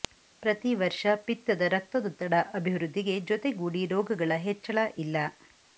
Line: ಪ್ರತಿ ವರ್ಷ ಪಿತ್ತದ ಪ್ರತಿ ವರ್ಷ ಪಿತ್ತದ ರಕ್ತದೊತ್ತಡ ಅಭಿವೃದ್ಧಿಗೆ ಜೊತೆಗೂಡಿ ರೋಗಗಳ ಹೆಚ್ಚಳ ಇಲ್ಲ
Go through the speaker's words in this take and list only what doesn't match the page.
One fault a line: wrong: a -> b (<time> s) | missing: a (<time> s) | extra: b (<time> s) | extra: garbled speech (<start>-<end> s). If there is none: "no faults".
missing: ಪ್ರತಿ ವರ್ಷ ಪಿತ್ತದ (1.6 s)